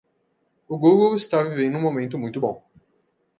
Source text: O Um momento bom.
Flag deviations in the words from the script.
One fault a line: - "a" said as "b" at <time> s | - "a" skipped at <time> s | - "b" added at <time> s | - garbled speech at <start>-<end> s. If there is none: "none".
- "Google está vivendo" added at 0.8 s
- "muito" added at 2.2 s